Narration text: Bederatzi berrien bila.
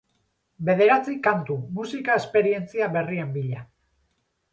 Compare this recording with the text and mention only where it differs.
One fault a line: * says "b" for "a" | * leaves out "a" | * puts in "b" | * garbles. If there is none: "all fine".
* puts in "kantu musika esperientzia"